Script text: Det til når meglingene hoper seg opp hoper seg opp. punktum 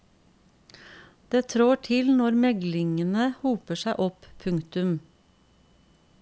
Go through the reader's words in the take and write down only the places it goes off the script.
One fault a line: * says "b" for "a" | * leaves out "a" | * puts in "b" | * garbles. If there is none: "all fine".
* puts in "trår"
* leaves out "hoper seg opp"